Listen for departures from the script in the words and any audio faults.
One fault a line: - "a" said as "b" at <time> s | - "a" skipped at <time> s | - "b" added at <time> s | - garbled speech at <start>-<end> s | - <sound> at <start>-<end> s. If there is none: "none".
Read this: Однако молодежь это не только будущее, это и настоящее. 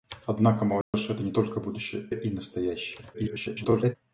- dropout at 0.8-0.9 s
- "это" skipped at 2.1 s
- garbled speech at 3.1-4.0 s